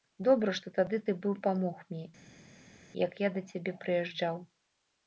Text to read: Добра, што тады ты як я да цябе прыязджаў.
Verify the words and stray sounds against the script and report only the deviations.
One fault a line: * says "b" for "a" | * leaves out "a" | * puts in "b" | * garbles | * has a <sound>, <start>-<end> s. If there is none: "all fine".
* puts in "быў памог мне"